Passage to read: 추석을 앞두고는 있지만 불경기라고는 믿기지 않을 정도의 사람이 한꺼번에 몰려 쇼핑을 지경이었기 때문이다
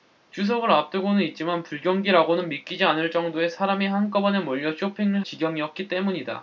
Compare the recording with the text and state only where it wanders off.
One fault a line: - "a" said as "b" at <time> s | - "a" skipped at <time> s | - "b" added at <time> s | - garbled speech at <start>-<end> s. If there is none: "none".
none